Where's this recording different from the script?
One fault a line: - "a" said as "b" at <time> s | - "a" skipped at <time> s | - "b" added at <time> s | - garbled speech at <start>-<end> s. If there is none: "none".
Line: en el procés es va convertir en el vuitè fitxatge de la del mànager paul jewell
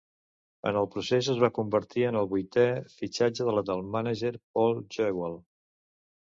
none